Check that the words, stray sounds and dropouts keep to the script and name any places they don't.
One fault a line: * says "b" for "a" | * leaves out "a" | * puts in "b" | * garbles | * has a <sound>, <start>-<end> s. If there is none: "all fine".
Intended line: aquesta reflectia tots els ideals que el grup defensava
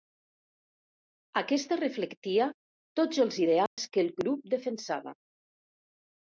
* has a dropout, 3.7-3.8 s